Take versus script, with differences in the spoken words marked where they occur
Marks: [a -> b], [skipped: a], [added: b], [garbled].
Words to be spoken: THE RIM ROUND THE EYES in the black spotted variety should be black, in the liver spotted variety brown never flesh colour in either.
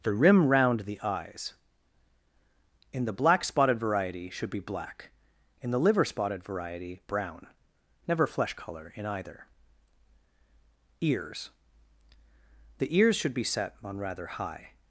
THE RIM ROUND THE EYES in the black spotted variety should be black, in the liver spotted variety brown never flesh colour in either. [added: EARS The ears should be set on rather high]